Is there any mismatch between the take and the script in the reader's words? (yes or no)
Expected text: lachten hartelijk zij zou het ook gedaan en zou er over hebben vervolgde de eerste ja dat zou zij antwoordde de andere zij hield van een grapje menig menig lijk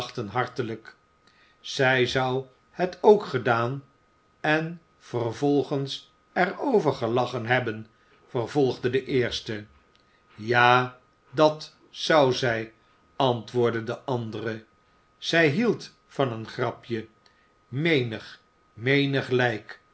yes